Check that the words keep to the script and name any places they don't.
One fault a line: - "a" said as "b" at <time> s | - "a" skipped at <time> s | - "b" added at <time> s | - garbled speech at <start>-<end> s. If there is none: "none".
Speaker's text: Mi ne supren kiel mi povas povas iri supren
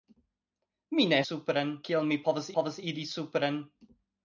none